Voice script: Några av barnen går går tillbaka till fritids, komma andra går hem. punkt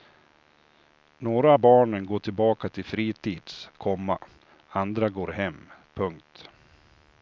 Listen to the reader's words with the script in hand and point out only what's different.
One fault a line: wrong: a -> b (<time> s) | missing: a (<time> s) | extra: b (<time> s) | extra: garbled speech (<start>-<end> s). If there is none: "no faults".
missing: går (2.2 s)